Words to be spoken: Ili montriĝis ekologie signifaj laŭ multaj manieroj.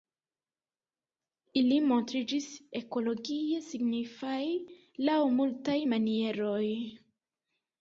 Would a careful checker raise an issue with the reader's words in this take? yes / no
no